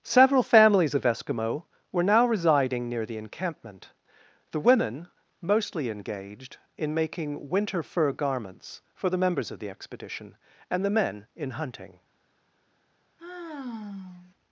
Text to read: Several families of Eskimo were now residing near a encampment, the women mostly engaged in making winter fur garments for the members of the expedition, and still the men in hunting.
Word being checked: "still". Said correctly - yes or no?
no